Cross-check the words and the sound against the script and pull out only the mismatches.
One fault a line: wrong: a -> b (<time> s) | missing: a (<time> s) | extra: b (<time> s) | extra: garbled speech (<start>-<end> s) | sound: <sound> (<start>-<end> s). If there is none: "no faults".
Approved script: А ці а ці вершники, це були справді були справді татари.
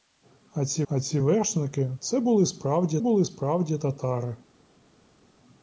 no faults